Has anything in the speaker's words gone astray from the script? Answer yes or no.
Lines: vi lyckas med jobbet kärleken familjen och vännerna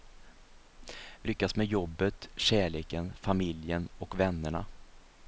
no